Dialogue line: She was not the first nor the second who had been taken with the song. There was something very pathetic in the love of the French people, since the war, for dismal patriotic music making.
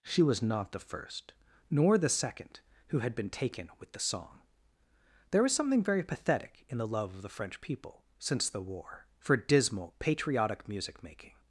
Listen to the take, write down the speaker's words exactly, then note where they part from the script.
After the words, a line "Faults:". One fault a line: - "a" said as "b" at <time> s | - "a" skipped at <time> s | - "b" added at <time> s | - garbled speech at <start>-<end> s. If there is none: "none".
She was not the first nor the second who had been taken with the song. There was something very pathetic in the love of the French people, since the war, for dismal patriotic music making.
Faults:
none